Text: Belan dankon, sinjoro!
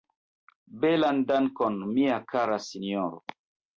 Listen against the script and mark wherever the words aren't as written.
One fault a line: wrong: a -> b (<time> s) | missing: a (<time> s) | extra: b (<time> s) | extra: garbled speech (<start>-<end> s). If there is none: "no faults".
extra: mia kara (1.9 s)